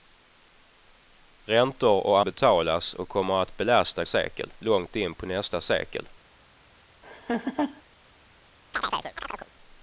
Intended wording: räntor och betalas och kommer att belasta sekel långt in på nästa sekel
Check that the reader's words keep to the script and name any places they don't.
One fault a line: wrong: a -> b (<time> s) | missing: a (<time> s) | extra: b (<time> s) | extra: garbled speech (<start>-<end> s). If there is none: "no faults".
no faults